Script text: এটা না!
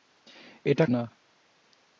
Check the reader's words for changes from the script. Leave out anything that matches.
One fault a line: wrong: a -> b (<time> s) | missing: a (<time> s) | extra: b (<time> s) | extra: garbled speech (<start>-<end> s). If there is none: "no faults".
no faults